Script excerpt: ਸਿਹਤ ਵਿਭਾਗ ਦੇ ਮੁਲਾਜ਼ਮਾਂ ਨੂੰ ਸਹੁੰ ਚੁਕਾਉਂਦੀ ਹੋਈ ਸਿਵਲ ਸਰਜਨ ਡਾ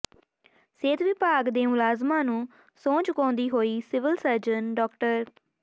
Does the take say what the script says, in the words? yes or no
yes